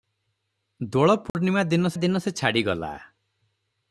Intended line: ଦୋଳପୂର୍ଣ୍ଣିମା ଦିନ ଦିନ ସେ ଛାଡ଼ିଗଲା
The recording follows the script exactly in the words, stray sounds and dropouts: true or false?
false